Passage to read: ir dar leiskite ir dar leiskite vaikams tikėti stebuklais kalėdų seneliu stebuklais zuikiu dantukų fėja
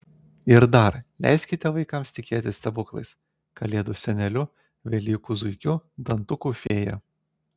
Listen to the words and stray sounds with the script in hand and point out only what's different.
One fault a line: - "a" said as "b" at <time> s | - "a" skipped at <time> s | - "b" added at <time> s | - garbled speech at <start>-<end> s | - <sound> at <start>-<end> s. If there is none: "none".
- "ir dar leiskite" skipped at 1.7 s
- "stebuklais" said as "velykų" at 4.9 s
- dropout at 6.7-6.7 s